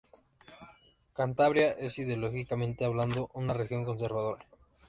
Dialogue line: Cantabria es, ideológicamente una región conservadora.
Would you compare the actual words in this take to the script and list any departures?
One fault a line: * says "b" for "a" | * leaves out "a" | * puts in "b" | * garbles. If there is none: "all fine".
* puts in "hablando"